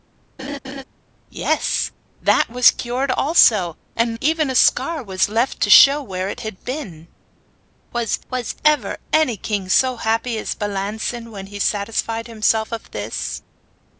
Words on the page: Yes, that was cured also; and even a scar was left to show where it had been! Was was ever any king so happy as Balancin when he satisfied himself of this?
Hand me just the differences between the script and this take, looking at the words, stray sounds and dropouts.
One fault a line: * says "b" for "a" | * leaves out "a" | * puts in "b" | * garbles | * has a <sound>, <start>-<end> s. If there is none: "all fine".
* has a laugh, 0.4-0.8 s